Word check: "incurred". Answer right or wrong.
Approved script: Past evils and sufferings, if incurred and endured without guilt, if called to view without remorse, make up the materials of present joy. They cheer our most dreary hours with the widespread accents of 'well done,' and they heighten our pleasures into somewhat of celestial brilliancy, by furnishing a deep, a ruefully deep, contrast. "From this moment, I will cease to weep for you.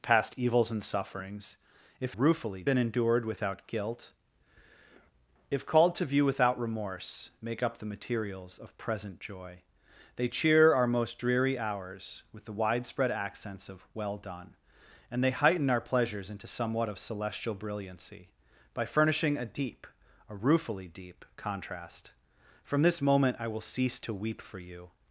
wrong